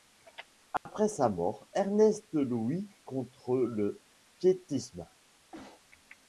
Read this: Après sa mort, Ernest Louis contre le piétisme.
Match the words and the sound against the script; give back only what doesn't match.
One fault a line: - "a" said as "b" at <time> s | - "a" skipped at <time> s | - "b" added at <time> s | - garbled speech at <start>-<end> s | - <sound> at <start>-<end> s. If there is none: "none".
- dropout at 0.8-0.9 s
- sneeze at 5.5-5.8 s